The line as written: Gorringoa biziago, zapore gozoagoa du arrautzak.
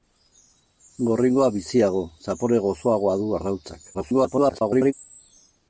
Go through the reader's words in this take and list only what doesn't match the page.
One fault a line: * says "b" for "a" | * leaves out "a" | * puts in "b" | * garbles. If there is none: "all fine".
* garbles